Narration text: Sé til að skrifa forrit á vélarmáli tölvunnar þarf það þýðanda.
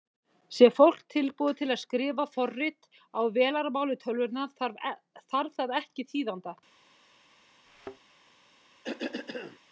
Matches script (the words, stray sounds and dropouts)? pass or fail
fail